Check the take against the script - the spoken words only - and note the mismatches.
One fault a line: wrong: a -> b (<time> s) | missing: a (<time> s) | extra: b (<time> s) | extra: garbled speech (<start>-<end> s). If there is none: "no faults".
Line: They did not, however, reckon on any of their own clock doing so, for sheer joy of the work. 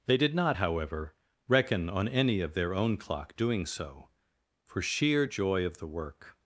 no faults